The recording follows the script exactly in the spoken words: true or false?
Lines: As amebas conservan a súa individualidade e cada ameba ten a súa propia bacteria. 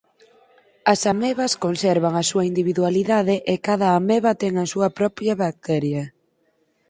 true